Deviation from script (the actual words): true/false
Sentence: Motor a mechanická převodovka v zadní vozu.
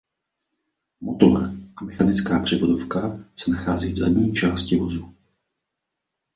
true